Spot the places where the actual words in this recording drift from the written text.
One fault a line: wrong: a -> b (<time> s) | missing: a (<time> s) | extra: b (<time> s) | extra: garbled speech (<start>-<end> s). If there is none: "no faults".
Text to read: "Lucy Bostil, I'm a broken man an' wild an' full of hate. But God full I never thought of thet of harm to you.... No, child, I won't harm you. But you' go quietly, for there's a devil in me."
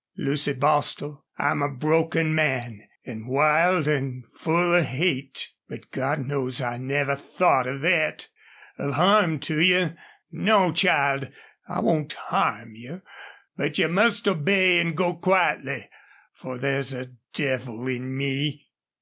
wrong: full -> knows (6.2 s)
extra: must obey an (13.9 s)